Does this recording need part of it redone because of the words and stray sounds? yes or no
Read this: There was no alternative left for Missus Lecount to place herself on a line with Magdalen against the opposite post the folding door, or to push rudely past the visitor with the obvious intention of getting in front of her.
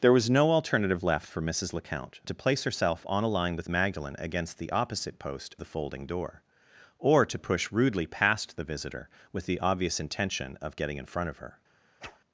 yes